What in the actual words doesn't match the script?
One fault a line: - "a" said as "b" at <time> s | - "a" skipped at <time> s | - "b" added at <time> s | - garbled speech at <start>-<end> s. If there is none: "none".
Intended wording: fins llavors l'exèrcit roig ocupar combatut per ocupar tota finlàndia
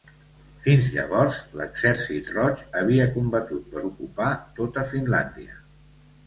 - "ocupar" said as "havia" at 2.8 s